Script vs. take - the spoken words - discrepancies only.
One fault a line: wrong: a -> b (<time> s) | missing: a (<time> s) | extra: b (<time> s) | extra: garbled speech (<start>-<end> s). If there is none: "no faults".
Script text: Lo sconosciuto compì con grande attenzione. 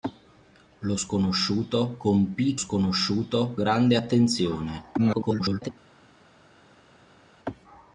wrong: con -> sconosciuto (2.6 s)
extra: garbled speech (5.0-5.7 s)